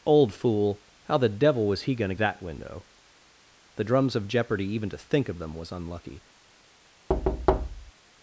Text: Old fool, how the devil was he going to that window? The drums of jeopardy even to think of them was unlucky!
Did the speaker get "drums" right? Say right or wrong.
right